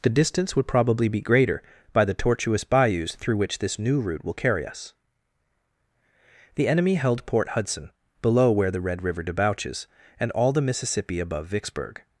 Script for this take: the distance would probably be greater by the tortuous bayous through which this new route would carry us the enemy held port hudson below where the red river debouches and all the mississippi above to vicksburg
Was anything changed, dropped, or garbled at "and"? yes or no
no